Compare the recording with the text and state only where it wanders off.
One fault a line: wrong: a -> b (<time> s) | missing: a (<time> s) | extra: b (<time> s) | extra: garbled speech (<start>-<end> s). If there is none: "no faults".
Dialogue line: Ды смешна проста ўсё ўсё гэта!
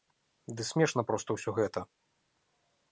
missing: ўсё (1.5 s)